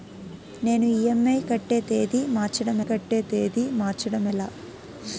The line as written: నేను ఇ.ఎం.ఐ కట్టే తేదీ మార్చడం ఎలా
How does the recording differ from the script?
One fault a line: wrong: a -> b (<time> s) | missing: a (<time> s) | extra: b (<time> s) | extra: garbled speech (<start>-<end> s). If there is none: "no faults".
extra: కట్టే తేదీ మార్చడం (2.9 s)